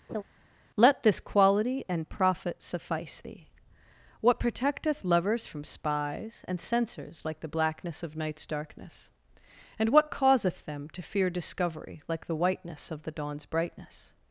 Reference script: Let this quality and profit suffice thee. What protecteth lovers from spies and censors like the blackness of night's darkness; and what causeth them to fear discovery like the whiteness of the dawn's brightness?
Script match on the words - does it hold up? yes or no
yes